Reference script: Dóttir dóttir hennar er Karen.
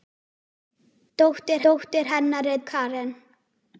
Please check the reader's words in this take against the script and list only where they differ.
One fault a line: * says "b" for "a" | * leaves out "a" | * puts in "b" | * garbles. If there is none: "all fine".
all fine